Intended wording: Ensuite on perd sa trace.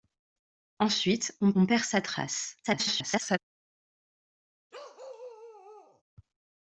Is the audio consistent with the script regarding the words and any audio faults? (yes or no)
no